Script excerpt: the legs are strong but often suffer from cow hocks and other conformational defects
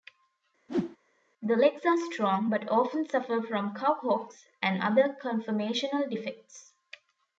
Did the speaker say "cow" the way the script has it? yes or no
yes